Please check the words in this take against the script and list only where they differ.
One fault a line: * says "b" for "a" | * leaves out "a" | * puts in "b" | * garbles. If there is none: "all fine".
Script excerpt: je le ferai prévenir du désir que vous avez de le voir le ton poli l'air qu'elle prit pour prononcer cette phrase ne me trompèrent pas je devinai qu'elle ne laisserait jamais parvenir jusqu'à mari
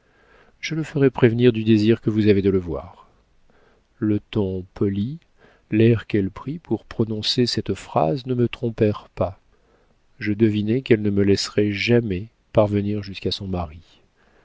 * puts in "me"
* puts in "son"